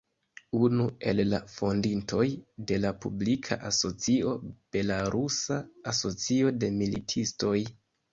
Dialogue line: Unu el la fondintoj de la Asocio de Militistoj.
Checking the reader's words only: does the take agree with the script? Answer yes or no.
no